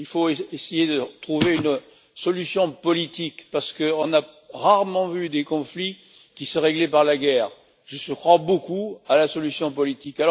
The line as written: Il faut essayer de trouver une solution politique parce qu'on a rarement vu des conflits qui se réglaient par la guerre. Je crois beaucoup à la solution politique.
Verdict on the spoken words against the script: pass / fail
pass